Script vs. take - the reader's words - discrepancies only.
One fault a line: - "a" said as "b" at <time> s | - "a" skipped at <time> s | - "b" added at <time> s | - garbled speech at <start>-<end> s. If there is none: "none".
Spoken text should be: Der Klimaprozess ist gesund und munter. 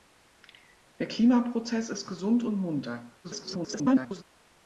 - garbled speech at 3.2-4.2 s